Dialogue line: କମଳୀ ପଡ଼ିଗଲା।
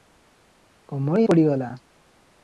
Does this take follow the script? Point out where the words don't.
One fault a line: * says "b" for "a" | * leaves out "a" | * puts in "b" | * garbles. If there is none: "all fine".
all fine